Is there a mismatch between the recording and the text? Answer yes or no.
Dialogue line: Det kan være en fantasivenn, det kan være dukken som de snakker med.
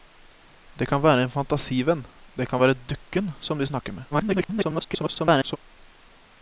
yes